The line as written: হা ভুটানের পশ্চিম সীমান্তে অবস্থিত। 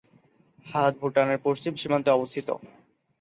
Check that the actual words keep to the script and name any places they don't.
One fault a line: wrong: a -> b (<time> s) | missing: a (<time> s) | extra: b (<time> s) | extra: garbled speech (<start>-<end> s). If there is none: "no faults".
no faults